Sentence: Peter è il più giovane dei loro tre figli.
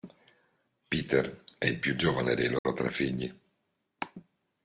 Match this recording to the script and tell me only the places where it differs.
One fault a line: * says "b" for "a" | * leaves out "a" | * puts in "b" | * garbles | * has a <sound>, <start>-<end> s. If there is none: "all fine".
* has a dropout, 2.6-2.7 s